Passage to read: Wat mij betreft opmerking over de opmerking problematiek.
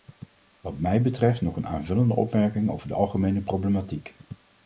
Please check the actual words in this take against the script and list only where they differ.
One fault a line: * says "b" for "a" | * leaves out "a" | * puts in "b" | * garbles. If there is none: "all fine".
* puts in "nog een aanvullende"
* says "algemene" for "opmerking"